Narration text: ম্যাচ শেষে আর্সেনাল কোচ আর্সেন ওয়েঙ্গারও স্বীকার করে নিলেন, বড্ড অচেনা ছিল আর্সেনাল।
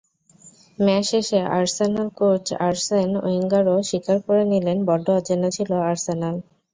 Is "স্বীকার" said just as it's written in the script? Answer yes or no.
yes